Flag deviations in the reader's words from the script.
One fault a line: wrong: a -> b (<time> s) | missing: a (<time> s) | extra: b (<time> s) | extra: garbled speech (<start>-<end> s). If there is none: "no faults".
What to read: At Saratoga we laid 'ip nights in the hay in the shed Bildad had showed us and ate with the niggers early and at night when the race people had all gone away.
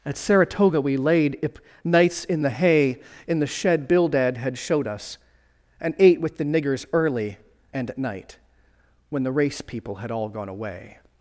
no faults